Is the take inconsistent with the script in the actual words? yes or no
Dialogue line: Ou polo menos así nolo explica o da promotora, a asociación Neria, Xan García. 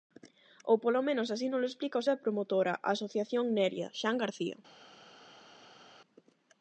no